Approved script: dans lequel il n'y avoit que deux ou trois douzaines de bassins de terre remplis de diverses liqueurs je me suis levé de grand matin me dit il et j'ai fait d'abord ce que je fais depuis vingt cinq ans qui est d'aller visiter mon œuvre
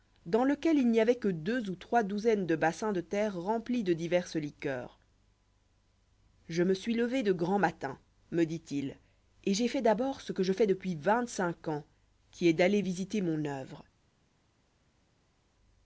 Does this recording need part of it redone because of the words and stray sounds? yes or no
no